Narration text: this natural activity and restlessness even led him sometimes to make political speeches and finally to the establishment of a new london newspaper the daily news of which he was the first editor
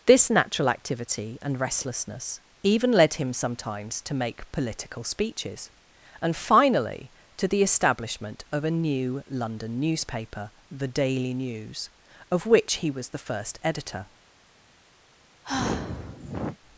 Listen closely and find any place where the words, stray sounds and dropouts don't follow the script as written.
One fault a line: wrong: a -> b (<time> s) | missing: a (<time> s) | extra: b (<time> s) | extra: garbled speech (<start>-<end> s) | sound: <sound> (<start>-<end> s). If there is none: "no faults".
sound: sigh (15.4-16.6 s)